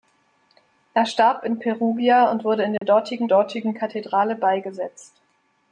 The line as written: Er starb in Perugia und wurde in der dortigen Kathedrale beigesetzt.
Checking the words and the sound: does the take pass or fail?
fail